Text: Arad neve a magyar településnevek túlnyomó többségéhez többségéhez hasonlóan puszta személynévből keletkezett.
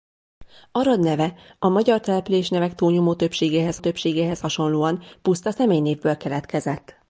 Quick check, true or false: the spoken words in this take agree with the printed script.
true